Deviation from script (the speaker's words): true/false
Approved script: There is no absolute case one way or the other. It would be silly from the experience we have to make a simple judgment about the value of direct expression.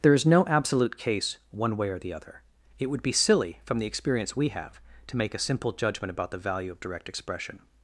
false